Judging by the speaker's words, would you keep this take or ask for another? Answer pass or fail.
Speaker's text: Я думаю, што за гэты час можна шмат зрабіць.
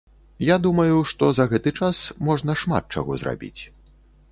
fail